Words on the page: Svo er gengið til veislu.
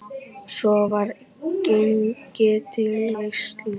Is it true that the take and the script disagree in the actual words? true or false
true